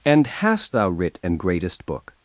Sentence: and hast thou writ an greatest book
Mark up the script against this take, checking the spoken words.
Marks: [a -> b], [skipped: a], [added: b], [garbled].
and hast thou writ an greatest book